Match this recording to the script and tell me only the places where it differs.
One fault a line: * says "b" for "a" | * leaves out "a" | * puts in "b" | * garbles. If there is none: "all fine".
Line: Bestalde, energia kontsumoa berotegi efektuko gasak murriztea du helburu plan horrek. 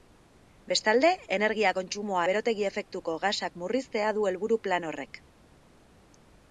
all fine